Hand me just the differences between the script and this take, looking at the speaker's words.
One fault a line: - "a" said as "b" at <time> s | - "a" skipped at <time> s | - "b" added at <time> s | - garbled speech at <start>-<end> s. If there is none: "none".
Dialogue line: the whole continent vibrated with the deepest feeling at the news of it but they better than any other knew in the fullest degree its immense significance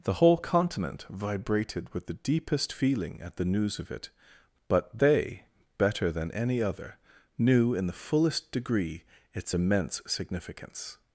none